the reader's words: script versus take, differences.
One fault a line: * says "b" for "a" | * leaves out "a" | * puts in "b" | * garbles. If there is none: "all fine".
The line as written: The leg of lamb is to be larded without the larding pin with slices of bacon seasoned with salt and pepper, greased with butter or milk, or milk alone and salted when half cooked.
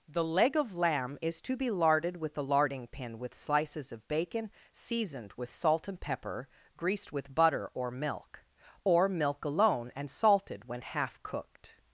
* says "with" for "without"